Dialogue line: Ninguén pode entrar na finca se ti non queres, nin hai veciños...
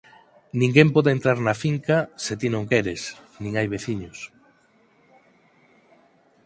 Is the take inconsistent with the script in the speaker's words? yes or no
no